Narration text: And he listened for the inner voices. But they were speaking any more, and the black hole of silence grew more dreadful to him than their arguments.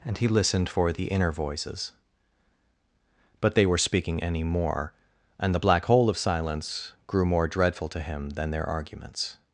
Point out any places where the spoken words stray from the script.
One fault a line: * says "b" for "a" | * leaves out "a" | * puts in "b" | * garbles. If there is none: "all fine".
all fine